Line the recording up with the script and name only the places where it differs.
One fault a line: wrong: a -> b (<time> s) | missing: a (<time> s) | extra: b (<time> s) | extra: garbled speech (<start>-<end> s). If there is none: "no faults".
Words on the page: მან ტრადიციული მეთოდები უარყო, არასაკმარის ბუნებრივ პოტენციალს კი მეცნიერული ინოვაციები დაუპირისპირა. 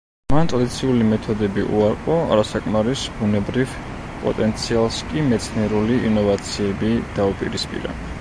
no faults